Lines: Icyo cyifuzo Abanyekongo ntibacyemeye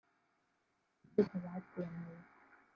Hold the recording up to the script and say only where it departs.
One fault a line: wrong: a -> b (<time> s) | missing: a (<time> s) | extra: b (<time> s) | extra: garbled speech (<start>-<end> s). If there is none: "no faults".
missing: cyifuzo Abanyekongo (1.2 s)